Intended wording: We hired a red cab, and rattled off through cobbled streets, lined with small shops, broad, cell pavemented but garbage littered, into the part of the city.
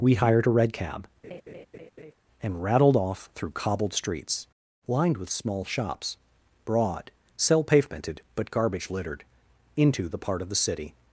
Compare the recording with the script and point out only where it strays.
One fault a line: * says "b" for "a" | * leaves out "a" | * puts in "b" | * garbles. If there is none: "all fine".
all fine